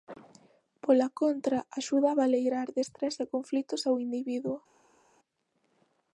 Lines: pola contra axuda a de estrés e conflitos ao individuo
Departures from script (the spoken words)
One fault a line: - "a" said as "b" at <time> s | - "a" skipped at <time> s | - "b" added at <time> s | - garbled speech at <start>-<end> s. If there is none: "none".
- "baleirar" added at 2.2 s